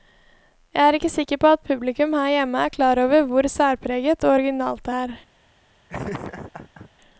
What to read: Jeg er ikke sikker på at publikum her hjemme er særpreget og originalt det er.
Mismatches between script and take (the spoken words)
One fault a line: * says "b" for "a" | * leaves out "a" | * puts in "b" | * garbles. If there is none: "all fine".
* puts in "klar over hvor"